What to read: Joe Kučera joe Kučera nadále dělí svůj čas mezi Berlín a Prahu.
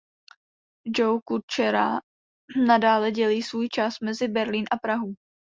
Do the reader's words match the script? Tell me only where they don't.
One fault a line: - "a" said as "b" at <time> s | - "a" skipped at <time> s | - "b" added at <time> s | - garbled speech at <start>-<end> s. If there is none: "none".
- "joe Kučera" skipped at 2.0 s